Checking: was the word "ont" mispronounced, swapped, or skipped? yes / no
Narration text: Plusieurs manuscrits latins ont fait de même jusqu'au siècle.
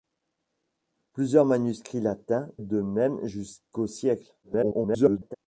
yes